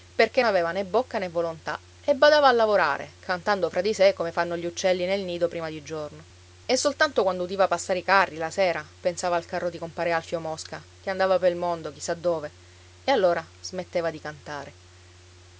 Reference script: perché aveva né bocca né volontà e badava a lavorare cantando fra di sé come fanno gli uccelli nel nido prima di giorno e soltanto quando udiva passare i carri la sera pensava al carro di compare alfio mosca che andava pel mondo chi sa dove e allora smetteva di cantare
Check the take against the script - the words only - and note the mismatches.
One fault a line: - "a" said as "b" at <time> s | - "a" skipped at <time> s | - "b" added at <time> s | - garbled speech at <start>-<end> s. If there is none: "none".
none